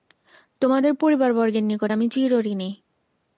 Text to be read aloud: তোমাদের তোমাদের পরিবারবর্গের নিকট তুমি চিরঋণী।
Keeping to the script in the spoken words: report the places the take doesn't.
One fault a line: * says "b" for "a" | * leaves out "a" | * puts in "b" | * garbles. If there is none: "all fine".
* leaves out "তোমাদের"
* says "আমি" for "তুমি"